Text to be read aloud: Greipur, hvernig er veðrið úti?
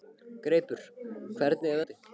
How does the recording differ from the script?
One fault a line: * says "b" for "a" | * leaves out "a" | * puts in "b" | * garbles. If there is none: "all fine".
* leaves out "veðrið"